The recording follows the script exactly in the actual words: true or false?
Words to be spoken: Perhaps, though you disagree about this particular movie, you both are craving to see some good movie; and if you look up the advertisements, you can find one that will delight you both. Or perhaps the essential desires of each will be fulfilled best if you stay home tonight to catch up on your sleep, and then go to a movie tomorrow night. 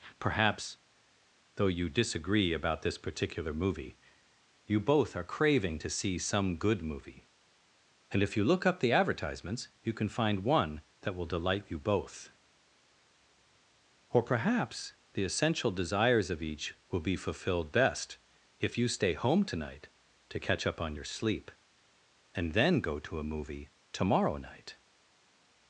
true